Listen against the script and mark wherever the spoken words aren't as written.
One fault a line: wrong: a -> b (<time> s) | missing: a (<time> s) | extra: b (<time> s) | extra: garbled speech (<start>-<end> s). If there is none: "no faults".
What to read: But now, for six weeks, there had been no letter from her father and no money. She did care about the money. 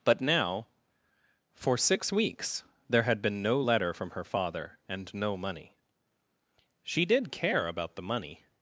no faults